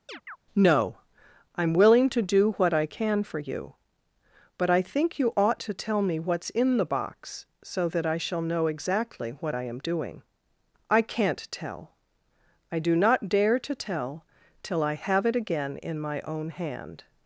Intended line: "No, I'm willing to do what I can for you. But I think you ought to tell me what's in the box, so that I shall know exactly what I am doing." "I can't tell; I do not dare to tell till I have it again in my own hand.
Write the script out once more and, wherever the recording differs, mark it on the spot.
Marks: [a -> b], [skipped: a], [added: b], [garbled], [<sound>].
[chirp] "No, I'm willing to do what I can for you. But I think you ought to tell me what's in the box, so that I shall know exactly what I am doing." "I can't tell; I do not dare to tell till I have it again in my own hand.